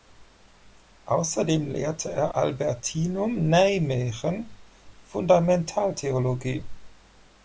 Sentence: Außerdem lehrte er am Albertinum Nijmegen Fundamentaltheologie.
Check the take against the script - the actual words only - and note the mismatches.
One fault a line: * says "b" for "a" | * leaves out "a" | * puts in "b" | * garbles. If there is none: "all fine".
* leaves out "am"